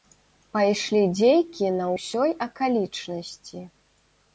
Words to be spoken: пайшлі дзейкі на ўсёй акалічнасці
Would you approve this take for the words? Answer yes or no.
yes